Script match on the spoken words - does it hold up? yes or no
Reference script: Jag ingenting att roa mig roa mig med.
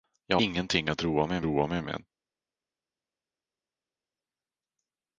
yes